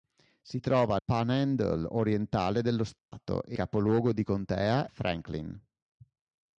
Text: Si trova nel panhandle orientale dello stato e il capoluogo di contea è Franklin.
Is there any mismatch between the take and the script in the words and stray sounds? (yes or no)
yes